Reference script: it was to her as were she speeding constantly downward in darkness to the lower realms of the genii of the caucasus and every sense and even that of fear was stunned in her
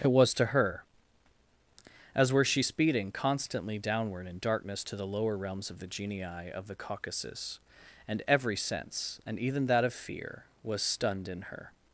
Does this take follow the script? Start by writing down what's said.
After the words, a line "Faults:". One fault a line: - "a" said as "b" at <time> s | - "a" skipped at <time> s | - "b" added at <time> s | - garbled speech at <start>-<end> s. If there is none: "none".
it was to her as were she speeding constantly downward in darkness to the lower realms of the genii of the caucasus and every sense and even that of fear was stunned in her
Faults:
none